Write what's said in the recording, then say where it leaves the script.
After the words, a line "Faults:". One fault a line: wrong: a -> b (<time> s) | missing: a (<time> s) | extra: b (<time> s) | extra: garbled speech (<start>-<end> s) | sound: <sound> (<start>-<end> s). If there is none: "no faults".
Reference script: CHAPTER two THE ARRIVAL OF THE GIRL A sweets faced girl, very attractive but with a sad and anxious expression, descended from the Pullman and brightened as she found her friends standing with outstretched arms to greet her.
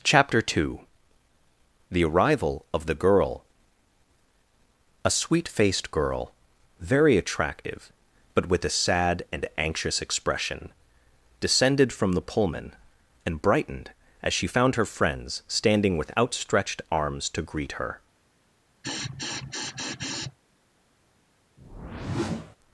CHAPTER two THE ARRIVAL OF THE GIRL A sweet faced girl, very attractive but with a sad and anxious expression, descended from the Pullman and brightened as she found her friends standing with outstretched arms to greet her.
Faults:
wrong: sweets -> sweet (5.1 s)
sound: sniff (18.8-20.4 s)
sound: whoosh (21.6-22.6 s)